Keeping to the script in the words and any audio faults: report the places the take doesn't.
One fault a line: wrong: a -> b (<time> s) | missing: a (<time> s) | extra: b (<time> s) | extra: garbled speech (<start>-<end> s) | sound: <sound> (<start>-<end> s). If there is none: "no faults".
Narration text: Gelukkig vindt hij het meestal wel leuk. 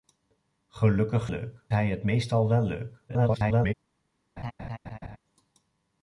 wrong: vindt -> leuk (1.3 s)
extra: garbled speech (3.1-3.7 s)
sound: laugh (4.4-5.2 s)